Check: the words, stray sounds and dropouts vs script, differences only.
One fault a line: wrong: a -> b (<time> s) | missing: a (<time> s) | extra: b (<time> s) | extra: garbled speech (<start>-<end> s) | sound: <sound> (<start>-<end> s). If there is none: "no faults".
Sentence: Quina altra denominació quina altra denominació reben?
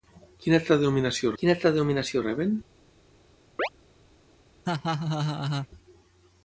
sound: chirp (3.6-3.7 s)
sound: laugh (4.6-5.7 s)